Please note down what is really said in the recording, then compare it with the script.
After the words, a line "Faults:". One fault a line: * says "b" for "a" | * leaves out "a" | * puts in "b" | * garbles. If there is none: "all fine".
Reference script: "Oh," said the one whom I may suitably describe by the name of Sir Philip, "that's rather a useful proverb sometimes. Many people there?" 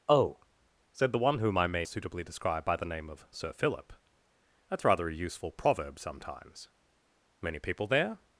"Oh," said the one whom I may suitably describe by the name of Sir Philip, "that's rather a useful proverb sometimes. Many people there?"
Faults:
all fine